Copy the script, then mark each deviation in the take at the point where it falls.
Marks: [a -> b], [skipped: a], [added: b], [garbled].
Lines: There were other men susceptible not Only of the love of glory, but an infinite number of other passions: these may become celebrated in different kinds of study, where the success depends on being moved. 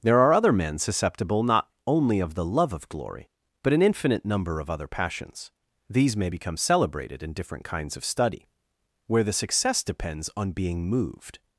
There [were -> are] other men susceptible not Only of the love of glory, but an infinite number of other passions: these may become celebrated in different kinds of study, where the success depends on being moved.